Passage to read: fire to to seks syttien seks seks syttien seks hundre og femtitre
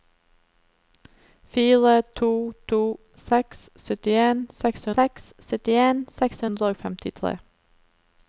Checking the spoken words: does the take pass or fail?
pass